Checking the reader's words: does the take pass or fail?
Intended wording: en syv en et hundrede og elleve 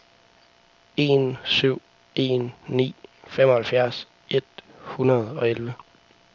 fail